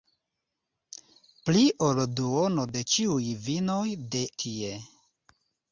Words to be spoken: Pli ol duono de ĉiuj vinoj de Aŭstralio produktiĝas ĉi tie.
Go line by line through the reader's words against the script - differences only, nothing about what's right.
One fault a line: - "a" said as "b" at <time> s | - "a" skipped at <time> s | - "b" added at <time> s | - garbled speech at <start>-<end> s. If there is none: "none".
- "Aŭstralio produktiĝas ĉi" skipped at 4.2 s